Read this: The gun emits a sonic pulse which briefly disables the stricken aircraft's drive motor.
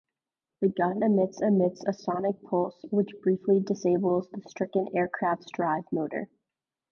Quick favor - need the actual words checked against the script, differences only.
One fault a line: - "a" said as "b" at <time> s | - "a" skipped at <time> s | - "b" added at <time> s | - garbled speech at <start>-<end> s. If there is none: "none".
- "emits" added at 1.4 s